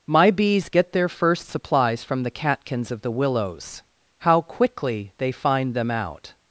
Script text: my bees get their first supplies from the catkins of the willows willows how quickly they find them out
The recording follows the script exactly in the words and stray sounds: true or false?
false